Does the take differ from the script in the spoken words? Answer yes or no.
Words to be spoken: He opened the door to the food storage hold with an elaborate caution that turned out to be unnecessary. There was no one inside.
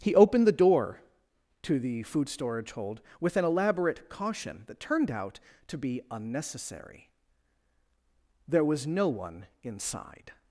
no